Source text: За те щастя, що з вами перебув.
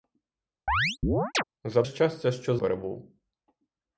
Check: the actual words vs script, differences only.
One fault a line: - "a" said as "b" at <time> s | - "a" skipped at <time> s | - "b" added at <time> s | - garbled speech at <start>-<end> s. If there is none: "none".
- "те" skipped at 1.8 s
- "вами" skipped at 2.6 s